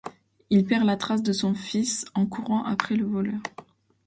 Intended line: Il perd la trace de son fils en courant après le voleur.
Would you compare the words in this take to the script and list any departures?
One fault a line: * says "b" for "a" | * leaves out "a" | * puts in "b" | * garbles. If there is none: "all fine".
all fine